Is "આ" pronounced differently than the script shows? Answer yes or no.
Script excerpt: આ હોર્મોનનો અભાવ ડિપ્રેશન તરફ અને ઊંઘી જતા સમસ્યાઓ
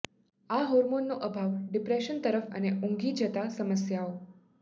no